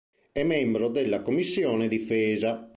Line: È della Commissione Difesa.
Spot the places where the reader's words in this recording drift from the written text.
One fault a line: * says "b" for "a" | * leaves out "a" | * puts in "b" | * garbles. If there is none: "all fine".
* puts in "membro"